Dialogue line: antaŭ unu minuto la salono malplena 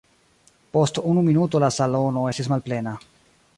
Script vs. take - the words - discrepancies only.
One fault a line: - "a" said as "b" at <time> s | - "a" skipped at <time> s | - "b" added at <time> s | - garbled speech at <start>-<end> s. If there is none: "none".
- "antaŭ" said as "post" at 0.8 s
- "estis" added at 2.3 s